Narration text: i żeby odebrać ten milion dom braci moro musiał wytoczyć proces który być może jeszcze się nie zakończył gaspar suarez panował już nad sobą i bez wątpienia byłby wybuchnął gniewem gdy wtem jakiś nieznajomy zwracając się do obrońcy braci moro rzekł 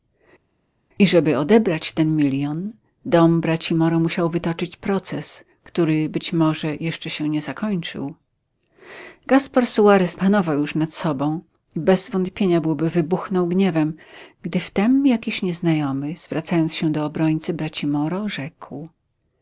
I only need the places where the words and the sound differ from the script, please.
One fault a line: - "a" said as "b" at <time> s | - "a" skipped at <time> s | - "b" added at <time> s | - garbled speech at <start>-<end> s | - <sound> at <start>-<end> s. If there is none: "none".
none